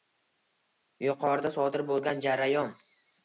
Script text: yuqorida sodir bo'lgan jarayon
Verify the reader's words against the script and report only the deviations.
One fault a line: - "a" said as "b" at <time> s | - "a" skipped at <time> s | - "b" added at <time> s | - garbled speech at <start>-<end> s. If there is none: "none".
none